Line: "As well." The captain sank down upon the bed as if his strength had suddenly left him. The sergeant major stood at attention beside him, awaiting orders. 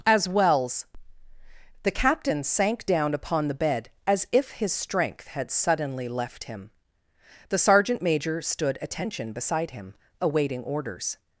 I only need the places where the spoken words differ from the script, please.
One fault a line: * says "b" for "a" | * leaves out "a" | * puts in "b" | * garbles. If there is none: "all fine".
* says "wells" for "well"
* leaves out "at"